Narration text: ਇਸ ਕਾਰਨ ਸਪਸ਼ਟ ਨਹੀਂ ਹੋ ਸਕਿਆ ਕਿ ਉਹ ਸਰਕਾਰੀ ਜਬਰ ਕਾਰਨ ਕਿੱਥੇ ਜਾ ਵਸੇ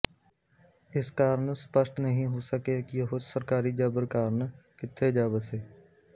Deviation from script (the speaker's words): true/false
false